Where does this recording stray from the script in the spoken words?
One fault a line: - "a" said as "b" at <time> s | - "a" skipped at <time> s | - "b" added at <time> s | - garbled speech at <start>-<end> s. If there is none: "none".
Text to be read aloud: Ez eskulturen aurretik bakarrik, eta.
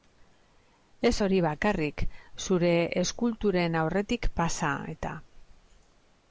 - "hori bakarrik zure" added at 1.2 s
- "bakarrik" said as "pasa" at 4.4 s